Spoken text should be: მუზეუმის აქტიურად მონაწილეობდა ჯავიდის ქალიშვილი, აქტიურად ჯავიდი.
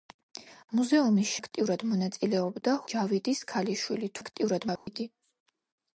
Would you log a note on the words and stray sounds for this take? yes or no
yes